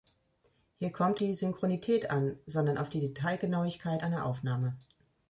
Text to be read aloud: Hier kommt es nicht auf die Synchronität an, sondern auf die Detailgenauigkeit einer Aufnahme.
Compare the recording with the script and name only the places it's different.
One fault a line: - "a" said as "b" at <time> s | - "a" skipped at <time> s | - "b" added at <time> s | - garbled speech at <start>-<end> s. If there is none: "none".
- "es nicht auf" skipped at 1.2 s